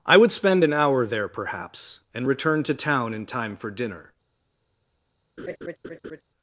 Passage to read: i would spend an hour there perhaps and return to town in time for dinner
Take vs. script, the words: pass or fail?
pass